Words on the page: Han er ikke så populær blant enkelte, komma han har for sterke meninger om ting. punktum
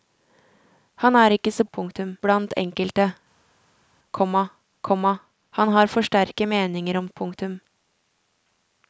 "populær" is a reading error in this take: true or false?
true